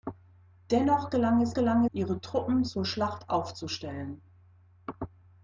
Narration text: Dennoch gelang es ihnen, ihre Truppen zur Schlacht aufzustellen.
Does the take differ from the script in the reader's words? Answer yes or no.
yes